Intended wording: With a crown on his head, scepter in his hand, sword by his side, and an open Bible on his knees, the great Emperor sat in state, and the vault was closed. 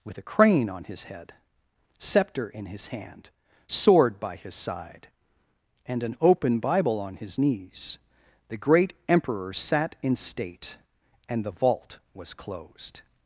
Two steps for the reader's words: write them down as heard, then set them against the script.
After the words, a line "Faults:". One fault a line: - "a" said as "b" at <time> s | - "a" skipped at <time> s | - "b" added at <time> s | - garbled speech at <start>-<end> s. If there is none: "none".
With a crane on his head, scepter in his hand, sword by his side, and an open Bible on his knees, the great Emperor sat in state, and the vault was closed.
Faults:
- "crown" said as "crane" at 0.2 s